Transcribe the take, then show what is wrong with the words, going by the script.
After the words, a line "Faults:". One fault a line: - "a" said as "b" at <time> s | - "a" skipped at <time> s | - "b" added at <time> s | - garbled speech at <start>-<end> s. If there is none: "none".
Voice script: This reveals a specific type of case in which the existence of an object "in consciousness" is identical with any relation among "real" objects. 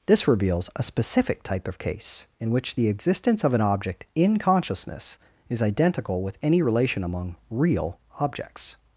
This reveals a specific type of case in which the existence of an object "in consciousness" is identical with any relation among "real" objects.
Faults:
none